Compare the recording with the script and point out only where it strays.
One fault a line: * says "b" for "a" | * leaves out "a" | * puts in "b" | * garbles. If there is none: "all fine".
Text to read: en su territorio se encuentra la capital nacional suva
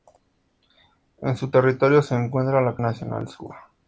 * leaves out "capital"